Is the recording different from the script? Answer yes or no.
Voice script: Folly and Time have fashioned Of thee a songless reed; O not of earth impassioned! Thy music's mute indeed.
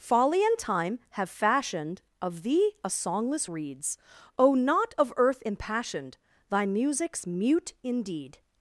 yes